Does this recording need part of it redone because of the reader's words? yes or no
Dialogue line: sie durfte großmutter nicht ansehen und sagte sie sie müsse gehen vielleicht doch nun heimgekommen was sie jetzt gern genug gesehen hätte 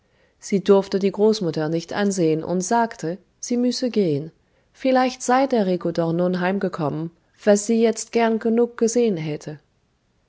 yes